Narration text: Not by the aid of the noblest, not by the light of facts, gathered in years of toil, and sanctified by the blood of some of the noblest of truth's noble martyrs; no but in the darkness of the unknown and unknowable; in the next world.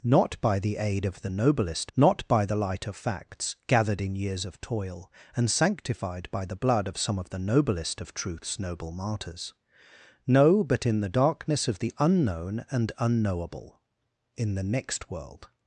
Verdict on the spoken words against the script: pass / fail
pass